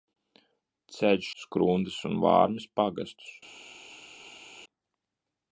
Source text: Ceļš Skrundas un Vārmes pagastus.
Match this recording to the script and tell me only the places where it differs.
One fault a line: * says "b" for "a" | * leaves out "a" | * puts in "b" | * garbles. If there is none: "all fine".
all fine